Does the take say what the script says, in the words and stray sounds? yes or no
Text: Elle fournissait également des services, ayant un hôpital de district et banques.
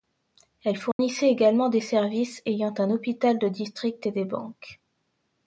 no